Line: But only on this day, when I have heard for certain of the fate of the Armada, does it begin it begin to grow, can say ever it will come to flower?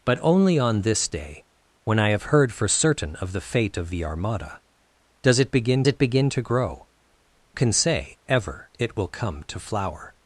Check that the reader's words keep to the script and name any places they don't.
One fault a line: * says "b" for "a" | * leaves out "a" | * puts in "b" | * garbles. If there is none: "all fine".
all fine